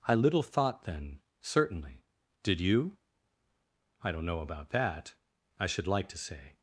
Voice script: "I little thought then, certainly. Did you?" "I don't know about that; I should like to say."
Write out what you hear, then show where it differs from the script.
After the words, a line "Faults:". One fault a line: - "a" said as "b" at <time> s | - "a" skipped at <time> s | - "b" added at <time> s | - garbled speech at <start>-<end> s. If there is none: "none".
"I little thought then, certainly. Did you?" "I don't know about that; I should like to say."
Faults:
none